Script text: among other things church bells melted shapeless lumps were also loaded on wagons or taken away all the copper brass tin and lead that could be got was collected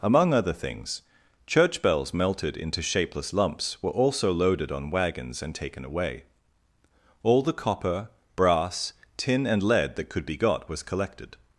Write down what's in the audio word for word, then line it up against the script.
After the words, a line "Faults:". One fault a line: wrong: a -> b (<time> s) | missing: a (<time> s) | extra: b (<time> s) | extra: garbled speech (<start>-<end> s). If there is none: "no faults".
among other things church bells melted into shapeless lumps were also loaded on wagons and taken away all the copper brass tin and lead that could be got was collected
Faults:
extra: into (2.6 s)
wrong: or -> and (5.4 s)